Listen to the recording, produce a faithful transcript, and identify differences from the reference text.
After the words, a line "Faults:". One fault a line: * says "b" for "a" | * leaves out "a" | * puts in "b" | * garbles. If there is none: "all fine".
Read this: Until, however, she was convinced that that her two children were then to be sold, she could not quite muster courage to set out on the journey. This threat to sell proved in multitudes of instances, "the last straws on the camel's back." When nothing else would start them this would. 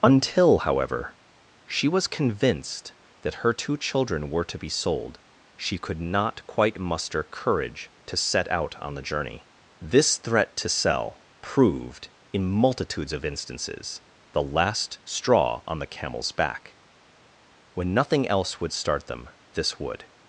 Until, however, she was convinced that her two children were to be sold, she could not quite muster courage to set out on the journey. This threat to sell proved in multitudes of instances, "the last straw on the camel's back." When nothing else would start them this would.
Faults:
* leaves out "that"
* leaves out "then"
* says "straw" for "straws"